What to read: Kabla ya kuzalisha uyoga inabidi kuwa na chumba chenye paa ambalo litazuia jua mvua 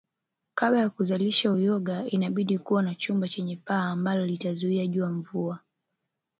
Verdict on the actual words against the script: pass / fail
pass